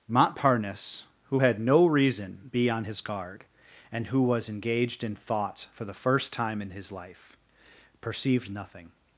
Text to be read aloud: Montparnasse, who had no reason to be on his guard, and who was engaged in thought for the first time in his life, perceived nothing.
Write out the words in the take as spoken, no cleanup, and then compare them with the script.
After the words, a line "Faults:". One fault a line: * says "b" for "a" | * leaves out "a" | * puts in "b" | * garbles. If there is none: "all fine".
Montparnasse, who had no reason be on his guard, and who was engaged in thought for the first time in his life, perceived nothing.
Faults:
* leaves out "to"